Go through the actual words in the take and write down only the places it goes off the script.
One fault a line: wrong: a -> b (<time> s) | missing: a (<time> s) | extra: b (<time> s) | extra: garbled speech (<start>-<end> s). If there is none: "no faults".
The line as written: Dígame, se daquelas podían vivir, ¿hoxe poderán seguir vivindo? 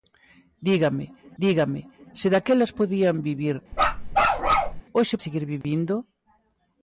extra: dígame (1.4 s)
missing: poderán (5.2 s)